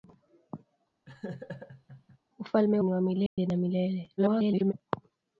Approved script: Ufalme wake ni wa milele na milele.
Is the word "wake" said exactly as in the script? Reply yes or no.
no